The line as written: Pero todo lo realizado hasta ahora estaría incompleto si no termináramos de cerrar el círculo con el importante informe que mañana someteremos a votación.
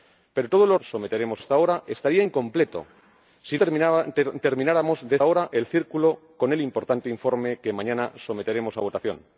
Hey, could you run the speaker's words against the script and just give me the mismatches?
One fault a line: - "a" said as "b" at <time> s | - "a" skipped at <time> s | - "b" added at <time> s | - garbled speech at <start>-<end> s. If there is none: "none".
- "realizado" said as "someteremos" at 0.8 s
- "no" skipped at 3.6 s
- "cerrar" said as "ahora" at 5.2 s